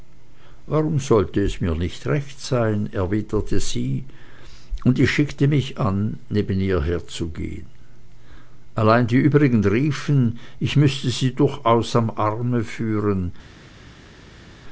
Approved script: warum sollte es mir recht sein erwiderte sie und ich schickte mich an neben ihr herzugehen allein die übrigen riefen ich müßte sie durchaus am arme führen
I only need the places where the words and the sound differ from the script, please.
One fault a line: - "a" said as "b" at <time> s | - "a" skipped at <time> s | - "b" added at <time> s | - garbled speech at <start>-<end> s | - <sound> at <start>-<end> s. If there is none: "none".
- "nicht" added at 1.8 s